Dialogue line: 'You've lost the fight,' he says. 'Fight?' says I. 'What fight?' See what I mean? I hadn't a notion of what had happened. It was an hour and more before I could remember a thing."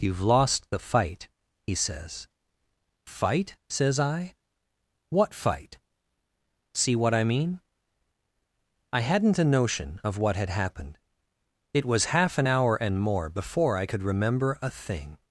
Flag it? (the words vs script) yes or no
yes